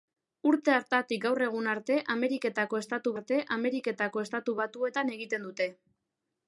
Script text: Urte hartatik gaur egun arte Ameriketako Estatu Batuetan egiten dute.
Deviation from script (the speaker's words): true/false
true